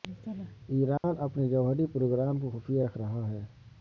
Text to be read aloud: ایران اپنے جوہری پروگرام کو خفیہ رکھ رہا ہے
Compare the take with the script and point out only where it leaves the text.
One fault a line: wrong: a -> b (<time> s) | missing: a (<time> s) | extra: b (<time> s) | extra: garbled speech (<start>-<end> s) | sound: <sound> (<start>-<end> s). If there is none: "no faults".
sound: dropout (1.0-1.0 s)